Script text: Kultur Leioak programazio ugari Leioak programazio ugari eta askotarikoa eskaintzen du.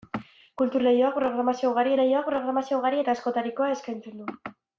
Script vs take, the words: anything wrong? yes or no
no